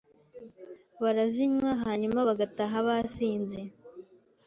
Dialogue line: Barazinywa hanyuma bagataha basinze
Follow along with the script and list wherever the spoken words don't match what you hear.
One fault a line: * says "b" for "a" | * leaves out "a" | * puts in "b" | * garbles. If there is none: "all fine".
all fine